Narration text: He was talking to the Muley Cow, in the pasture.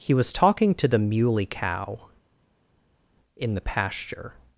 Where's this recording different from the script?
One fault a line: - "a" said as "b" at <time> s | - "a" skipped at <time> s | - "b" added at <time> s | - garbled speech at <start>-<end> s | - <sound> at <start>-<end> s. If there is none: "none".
none